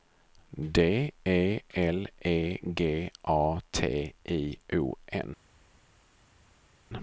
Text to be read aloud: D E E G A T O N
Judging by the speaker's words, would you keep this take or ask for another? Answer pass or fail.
fail